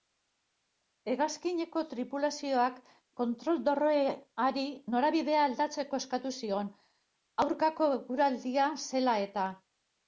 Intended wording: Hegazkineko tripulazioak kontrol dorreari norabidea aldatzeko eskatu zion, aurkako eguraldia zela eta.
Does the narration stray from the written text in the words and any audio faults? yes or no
no